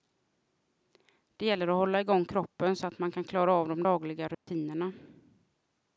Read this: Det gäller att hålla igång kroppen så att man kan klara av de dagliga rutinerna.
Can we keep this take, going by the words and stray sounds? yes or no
no